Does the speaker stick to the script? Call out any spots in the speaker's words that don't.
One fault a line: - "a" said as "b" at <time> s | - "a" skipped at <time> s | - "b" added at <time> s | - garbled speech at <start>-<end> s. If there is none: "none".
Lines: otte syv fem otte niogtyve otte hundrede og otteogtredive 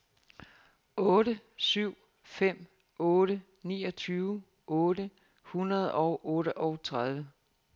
none